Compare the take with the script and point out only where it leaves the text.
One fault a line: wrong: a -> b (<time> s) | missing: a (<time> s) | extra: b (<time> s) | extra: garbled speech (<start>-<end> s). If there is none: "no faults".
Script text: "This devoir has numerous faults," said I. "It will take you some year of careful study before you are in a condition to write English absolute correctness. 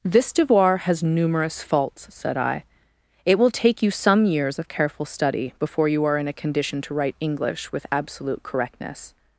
wrong: year -> years (4.2 s)
extra: with (7.7 s)